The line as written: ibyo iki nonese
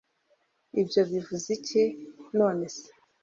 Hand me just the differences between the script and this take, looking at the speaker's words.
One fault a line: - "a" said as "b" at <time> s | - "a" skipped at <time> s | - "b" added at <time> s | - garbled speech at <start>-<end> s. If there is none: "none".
- "bivuze" added at 1.1 s